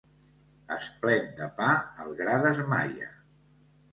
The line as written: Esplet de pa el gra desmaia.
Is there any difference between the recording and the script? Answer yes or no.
no